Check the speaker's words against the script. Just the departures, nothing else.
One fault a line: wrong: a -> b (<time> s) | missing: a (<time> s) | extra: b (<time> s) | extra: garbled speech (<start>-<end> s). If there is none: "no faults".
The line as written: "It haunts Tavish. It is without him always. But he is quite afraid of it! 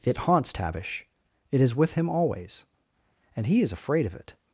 wrong: without -> with (1.8 s)
wrong: But -> And (3.4 s)
missing: quite (3.7 s)